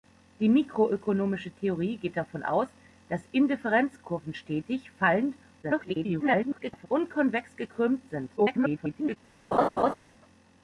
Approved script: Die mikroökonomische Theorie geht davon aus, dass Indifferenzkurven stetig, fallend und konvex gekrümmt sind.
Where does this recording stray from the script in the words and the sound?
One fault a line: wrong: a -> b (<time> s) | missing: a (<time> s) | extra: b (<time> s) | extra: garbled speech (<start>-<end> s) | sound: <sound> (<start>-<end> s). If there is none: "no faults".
extra: garbled speech (5.6-6.9 s)
extra: garbled speech (8.4-9.2 s)
sound: laugh (9.5-9.9 s)